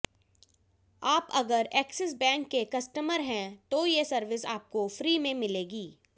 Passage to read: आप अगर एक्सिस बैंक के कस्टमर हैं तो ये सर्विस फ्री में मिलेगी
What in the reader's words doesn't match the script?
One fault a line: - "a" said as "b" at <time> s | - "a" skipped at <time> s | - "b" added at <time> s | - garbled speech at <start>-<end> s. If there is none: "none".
- "आपको" added at 4.4 s